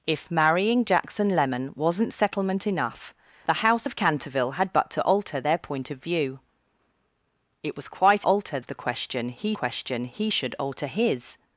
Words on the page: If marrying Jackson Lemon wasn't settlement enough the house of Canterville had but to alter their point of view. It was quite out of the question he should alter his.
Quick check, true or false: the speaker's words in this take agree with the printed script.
false